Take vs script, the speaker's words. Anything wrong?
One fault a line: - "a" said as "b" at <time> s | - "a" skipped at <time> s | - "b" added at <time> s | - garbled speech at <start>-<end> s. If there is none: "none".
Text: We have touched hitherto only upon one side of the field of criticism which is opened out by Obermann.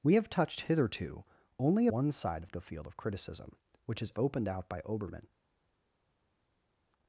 - "upon" skipped at 1.9 s